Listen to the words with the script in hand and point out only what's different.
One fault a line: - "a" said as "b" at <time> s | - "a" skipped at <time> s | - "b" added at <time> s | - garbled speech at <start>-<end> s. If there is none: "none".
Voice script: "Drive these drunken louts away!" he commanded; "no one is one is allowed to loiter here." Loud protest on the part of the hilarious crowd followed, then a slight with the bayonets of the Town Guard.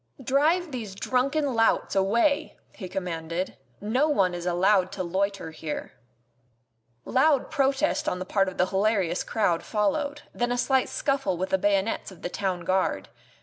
- "one is" skipped at 4.5 s
- "scuffle" added at 10.9 s